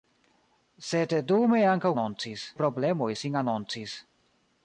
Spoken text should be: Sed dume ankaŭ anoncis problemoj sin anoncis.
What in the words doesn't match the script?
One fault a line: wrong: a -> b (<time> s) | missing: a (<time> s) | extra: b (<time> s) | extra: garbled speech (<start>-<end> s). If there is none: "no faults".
no faults